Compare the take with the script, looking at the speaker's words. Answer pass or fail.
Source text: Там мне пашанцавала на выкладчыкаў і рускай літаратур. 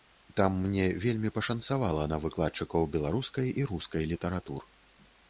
fail